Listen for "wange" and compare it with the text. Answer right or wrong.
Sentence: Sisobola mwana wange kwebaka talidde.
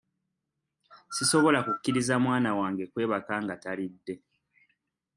right